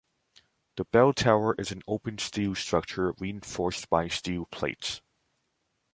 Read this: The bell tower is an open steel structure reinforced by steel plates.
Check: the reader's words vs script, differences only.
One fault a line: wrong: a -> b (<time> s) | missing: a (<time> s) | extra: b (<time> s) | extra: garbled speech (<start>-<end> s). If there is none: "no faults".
no faults